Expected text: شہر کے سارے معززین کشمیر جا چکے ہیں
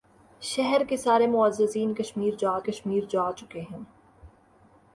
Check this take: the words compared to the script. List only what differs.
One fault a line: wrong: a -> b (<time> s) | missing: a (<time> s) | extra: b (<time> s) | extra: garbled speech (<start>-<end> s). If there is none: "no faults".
extra: کشمیر جا (2.6 s)